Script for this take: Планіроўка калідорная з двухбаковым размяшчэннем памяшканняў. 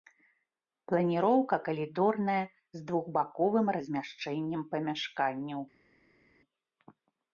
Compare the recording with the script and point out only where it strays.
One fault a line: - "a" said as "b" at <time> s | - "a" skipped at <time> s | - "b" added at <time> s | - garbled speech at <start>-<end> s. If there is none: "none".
none